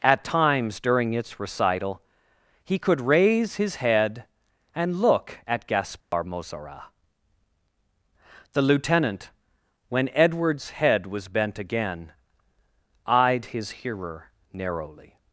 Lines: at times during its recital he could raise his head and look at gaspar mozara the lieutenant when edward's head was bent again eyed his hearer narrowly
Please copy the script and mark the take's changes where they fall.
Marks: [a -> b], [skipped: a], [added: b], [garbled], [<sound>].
at times during its recital he could raise his head and look at gaspar [dropout] mozara the lieutenant when edward's head was bent again eyed his hearer narrowly